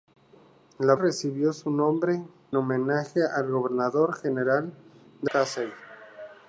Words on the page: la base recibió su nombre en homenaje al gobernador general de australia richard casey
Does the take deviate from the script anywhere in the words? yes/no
yes